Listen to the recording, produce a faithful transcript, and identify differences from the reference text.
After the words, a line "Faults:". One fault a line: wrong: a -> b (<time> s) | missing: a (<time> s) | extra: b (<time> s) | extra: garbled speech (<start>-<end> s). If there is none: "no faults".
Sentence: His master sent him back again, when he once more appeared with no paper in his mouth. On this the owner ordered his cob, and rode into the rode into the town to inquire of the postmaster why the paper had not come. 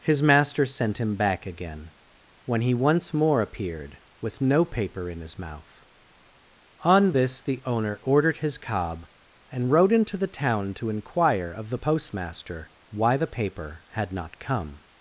His master sent him back again, when he once more appeared with no paper in his mouth. On this the owner ordered his cob, and rode into the town to inquire of the postmaster why the paper had not come.
Faults:
missing: rode into the (10.3 s)